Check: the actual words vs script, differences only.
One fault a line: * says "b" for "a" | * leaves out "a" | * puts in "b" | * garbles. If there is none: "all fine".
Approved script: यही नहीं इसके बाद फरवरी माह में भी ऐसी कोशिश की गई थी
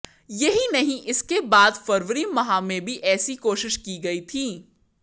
all fine